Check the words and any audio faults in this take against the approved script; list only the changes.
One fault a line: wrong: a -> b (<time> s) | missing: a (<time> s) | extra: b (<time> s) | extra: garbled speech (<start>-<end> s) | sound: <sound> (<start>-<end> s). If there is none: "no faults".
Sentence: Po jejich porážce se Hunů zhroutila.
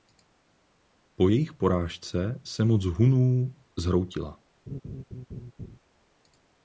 extra: moc (2.6 s)
sound: laugh (4.7-5.8 s)